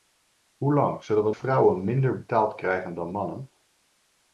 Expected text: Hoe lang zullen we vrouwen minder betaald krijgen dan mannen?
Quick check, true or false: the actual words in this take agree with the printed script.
true